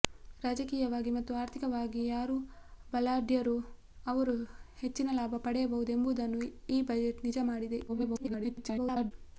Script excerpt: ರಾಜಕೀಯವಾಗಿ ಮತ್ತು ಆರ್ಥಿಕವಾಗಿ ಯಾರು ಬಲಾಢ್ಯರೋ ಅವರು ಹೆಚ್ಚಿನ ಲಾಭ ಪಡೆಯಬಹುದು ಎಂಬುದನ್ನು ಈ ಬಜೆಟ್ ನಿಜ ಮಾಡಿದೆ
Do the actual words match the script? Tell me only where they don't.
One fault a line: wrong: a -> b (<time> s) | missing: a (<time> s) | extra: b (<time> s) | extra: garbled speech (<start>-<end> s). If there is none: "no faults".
extra: garbled speech (7.9-9.1 s)